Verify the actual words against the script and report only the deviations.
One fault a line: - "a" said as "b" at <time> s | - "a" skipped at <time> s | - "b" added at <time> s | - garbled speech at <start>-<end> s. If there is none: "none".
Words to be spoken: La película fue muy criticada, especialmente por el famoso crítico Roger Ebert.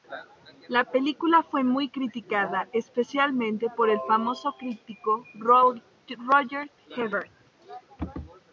none